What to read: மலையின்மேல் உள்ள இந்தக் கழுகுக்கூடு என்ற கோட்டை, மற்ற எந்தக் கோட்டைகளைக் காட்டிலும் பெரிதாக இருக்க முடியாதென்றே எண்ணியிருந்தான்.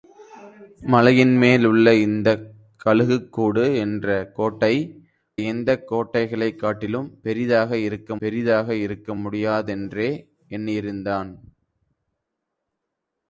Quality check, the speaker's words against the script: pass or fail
fail